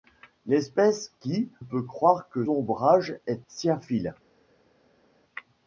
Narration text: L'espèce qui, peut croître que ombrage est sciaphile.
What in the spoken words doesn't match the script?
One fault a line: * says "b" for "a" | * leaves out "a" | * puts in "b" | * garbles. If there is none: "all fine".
all fine